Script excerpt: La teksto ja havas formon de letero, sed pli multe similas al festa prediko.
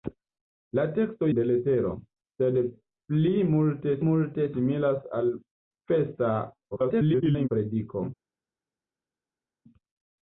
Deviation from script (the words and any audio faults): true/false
true